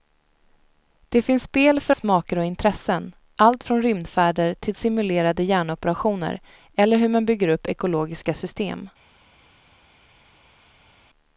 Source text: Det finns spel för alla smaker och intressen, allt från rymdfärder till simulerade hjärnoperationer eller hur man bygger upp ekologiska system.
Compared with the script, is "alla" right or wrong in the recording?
wrong